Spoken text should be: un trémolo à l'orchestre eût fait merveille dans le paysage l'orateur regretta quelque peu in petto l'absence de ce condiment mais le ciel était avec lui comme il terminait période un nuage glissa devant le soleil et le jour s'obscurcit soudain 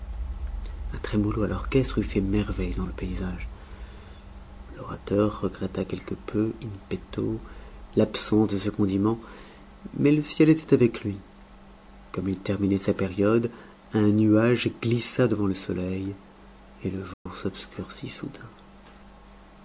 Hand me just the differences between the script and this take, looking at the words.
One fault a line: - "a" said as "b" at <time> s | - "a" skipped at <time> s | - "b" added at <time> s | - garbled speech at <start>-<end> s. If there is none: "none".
- "sa" added at 12.8 s